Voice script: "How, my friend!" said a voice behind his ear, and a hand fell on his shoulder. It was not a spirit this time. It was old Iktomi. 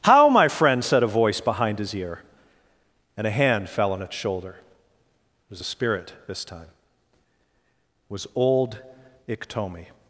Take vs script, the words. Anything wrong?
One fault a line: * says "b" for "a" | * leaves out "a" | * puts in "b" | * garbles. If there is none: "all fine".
* says "its" for "his"
* leaves out "not"